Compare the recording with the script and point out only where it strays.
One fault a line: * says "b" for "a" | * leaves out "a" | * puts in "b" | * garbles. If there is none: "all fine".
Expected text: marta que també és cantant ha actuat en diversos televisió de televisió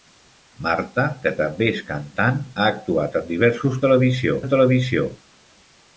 all fine